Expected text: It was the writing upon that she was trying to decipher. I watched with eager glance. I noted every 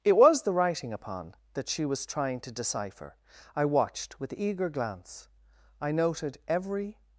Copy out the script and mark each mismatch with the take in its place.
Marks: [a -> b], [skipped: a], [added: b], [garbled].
It was the writing upon that she was trying to decipher. I watched with eager glance. I noted every